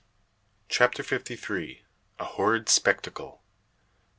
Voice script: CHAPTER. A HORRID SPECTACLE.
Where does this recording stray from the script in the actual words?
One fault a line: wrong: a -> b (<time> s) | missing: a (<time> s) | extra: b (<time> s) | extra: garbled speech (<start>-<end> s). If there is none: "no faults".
extra: FIFTY THREE (1.0 s)